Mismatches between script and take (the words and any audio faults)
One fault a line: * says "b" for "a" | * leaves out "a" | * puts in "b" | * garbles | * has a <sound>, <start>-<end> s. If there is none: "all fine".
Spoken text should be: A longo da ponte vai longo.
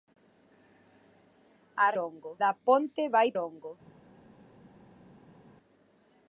all fine